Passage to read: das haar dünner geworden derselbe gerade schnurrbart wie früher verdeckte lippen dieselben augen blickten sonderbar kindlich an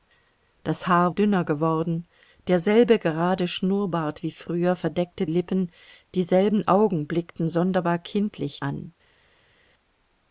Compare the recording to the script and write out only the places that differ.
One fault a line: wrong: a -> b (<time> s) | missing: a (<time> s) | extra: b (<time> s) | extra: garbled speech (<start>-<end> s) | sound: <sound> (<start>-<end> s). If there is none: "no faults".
no faults